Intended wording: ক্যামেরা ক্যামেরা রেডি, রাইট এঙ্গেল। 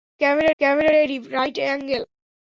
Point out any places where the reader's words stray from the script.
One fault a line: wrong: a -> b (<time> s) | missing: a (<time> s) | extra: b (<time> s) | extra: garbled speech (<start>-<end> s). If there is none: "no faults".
no faults